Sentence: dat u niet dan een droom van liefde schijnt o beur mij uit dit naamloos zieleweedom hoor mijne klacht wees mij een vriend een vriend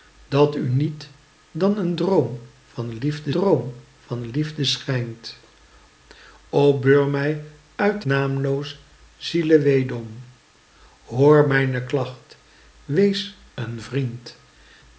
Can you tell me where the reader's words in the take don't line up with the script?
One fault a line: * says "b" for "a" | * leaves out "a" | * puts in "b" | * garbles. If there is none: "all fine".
* puts in "droom van liefde"
* leaves out "dit"
* leaves out "mij een vriend"